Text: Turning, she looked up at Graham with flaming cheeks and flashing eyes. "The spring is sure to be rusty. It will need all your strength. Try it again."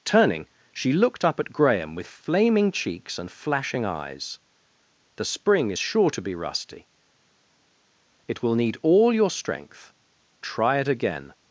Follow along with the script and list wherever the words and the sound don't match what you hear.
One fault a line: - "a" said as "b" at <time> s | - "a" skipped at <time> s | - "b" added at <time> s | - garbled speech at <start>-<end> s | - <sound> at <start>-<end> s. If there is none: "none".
none